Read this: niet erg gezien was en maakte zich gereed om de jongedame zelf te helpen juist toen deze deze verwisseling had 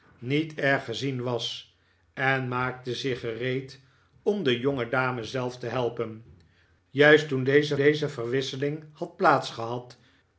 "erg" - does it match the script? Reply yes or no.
yes